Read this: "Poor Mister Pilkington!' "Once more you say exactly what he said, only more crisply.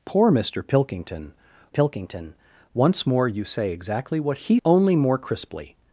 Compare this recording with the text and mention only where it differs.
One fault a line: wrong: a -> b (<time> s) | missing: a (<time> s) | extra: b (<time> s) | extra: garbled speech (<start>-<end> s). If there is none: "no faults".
extra: Pilkington (1.7 s)
missing: said (4.6 s)